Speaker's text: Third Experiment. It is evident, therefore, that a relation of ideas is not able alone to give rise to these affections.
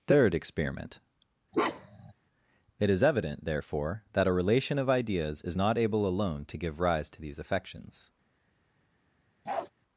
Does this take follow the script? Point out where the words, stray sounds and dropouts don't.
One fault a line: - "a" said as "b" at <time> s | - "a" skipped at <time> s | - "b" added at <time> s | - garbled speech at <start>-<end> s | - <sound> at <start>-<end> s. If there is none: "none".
- bark at 1.5-2.1 s
- bark at 9.5-9.7 s